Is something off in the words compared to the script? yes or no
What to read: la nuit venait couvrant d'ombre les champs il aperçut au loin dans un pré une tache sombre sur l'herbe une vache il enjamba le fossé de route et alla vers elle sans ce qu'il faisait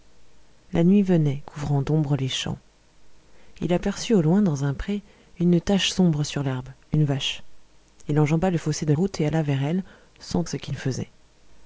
no